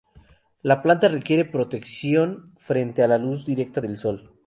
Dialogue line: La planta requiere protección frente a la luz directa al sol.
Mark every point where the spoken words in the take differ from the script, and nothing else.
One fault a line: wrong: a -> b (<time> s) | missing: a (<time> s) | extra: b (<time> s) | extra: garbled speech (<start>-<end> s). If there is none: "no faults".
wrong: al -> del (3.8 s)